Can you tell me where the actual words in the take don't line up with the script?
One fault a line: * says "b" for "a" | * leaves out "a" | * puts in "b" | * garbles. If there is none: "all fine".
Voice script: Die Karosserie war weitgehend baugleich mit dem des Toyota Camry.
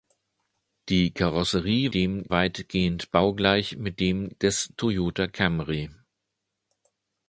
* says "dem" for "war"